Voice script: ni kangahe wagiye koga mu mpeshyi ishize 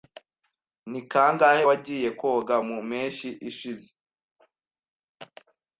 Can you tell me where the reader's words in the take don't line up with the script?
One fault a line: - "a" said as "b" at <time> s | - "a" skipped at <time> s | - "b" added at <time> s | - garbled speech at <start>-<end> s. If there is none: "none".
none